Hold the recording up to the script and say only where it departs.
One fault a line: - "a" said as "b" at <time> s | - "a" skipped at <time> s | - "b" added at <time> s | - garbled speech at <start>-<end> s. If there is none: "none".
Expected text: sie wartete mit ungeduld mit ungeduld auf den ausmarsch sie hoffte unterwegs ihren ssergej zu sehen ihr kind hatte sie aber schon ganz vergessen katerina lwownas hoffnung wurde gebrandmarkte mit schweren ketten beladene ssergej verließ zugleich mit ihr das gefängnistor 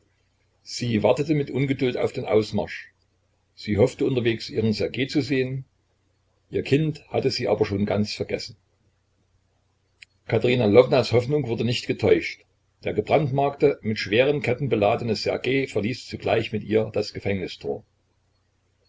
- "mit ungeduld" skipped at 1.9 s
- "nicht getäuscht der" added at 11.7 s